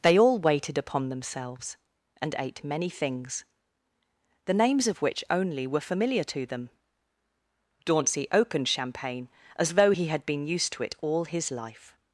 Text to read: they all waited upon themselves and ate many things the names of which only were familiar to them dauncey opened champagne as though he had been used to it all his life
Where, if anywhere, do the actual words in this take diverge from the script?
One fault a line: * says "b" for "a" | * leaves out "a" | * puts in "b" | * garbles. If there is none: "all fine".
all fine